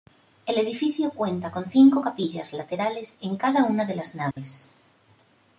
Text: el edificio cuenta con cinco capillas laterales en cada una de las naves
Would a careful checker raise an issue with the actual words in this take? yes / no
no